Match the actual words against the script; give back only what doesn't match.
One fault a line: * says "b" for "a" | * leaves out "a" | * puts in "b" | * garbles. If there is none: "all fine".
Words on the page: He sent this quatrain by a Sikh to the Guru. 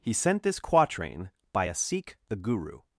* leaves out "to"